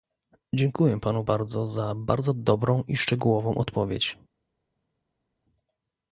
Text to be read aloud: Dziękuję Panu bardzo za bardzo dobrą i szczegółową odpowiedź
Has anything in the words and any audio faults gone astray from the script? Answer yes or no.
no